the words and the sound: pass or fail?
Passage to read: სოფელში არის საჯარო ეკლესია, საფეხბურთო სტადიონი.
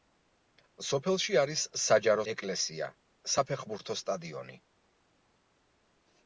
pass